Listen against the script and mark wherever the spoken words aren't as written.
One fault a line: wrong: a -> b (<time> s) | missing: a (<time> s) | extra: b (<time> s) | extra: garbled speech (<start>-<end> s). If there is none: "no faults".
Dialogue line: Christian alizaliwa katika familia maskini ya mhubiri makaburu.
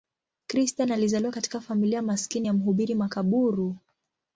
no faults